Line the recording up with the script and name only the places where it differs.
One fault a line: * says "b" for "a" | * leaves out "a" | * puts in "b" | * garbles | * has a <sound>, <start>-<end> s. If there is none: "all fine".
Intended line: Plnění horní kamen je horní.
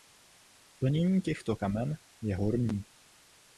* says "těchto" for "horní"